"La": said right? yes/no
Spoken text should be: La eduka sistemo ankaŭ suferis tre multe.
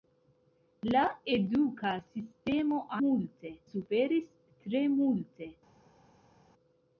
yes